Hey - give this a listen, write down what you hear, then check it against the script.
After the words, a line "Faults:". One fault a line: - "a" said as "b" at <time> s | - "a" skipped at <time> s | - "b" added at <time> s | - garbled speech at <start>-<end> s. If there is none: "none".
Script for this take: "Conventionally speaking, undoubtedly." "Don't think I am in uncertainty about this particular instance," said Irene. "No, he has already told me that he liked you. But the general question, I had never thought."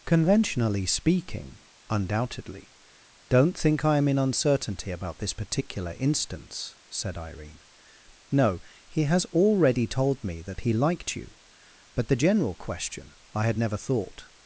"Conventionally speaking, undoubtedly." "Don't think I am in uncertainty about this particular instance," said Irene. "No, he has already told me that he liked you. But the general question, I had never thought."
Faults:
none